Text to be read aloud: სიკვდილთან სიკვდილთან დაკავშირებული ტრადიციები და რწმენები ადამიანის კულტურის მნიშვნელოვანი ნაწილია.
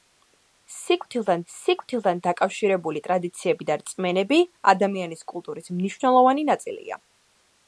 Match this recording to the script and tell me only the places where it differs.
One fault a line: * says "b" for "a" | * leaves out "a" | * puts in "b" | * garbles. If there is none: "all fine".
all fine